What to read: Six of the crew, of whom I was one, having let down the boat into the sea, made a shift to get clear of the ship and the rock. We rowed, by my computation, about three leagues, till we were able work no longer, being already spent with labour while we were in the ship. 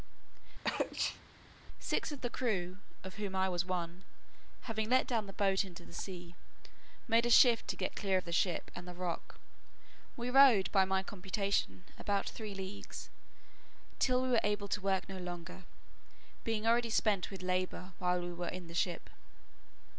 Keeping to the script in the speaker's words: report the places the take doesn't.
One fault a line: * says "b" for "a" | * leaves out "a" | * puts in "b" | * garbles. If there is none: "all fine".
* puts in "to"